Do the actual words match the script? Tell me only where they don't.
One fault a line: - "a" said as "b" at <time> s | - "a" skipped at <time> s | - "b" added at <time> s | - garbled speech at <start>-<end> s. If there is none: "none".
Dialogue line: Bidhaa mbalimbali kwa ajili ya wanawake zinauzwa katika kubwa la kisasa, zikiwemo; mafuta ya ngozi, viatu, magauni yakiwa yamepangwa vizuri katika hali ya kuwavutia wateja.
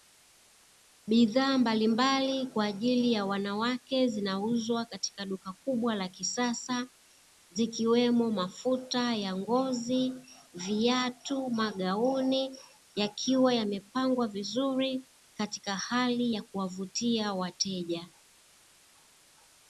- "duka" added at 5.2 s